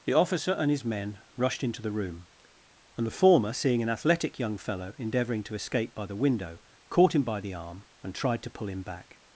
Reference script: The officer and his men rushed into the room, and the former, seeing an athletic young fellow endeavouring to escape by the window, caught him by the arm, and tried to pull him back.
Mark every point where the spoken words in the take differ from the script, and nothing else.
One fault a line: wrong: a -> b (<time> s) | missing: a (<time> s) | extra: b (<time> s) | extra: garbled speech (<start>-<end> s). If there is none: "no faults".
no faults